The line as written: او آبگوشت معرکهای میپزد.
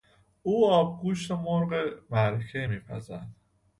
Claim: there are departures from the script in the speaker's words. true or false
true